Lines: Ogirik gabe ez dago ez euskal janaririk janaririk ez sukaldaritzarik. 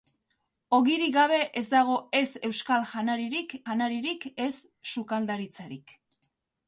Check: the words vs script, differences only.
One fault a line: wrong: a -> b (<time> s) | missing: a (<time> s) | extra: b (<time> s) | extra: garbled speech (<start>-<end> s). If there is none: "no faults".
no faults